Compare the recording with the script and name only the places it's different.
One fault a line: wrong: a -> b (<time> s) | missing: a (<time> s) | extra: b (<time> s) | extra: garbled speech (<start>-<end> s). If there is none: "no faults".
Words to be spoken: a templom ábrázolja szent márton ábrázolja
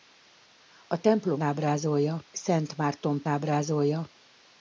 no faults